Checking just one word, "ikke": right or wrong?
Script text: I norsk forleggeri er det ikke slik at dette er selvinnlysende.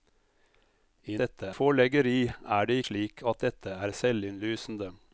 wrong